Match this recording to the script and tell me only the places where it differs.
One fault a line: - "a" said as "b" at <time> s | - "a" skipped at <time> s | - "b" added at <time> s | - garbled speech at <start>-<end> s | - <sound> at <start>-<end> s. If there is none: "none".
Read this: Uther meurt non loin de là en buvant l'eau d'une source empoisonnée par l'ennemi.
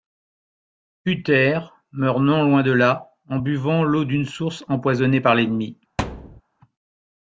- thud at 6.0-6.4 s